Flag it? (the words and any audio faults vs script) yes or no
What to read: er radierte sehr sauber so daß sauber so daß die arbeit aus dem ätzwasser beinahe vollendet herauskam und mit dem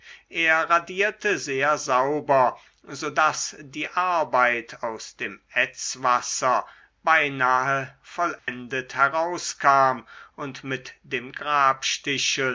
yes